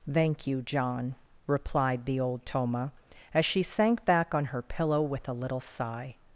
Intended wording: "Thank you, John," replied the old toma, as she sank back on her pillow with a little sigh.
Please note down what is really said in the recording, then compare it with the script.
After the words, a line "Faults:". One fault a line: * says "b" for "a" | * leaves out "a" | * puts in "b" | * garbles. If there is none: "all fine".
"Thank you, John," replied the old toma, as she sank back on her pillow with a little sigh.
Faults:
all fine